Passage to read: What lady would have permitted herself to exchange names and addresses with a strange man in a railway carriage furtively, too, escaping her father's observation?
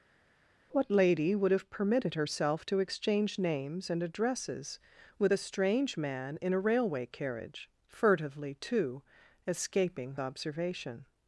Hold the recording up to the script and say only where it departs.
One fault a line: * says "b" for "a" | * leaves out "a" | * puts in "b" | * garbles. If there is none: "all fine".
* leaves out "her father's"